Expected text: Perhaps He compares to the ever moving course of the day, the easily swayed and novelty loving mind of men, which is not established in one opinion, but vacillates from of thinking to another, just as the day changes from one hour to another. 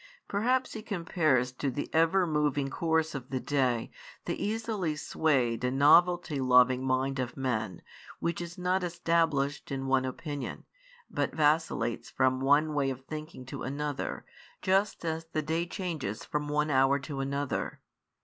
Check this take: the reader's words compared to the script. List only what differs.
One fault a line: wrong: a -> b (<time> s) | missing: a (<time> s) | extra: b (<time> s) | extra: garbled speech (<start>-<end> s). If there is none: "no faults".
extra: one way (12.4 s)